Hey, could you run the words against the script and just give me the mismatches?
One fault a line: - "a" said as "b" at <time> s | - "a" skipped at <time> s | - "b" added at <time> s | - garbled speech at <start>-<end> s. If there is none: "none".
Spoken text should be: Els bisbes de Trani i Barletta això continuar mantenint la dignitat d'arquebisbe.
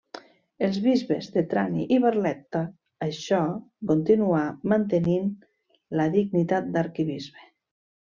none